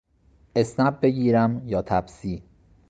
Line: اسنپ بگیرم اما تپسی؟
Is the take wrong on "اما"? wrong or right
wrong